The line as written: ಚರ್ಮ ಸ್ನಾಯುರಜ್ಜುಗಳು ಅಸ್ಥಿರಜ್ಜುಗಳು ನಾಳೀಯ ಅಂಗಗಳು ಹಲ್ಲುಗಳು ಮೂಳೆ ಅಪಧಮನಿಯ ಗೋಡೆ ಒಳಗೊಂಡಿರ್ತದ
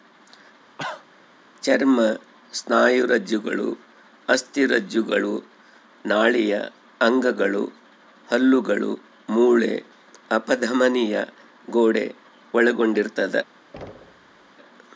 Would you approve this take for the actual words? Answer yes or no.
yes